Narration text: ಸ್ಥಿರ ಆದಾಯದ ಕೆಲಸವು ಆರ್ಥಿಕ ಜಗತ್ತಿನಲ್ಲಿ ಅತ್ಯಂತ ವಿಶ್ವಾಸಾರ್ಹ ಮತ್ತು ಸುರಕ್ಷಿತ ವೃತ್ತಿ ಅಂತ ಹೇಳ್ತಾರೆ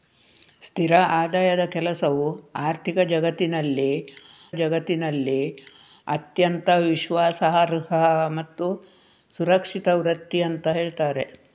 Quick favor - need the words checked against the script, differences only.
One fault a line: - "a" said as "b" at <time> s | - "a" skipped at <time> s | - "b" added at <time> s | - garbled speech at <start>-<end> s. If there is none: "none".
- "ಜಗತ್ತಿನಲ್ಲಿ" added at 4.6 s